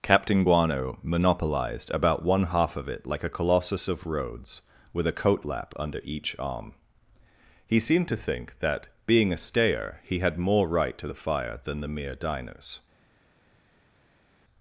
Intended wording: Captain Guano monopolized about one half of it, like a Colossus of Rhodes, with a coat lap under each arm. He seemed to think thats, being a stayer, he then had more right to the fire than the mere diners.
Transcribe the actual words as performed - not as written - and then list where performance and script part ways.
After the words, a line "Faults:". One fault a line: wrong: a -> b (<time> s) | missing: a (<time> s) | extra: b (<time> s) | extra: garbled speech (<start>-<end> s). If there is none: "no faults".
Captain Guano monopolized about one half of it, like a Colossus of Rhodes, with a coat lap under each arm. He seemed to think that, being a stayer, he had more right to the fire than the mere diners.
Faults:
wrong: thats -> that (8.6 s)
missing: then (10.2 s)